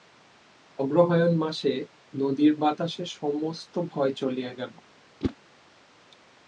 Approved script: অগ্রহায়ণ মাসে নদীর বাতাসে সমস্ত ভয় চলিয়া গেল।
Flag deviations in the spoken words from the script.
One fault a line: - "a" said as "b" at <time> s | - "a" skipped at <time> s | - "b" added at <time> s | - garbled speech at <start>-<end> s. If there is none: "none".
none